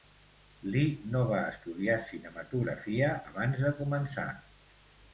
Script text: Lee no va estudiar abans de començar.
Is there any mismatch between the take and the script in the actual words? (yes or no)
yes